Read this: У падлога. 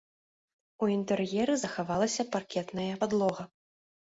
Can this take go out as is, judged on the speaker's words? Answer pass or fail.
fail